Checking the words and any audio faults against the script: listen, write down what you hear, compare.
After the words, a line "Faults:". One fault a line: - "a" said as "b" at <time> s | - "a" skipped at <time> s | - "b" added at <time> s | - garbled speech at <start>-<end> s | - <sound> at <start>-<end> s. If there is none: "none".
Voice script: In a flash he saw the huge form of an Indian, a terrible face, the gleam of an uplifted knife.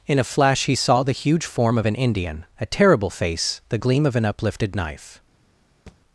In a flash he saw the huge form of an Indian, a terrible face, the gleam of an uplifted knife.
Faults:
- thud at 5.9-6.0 s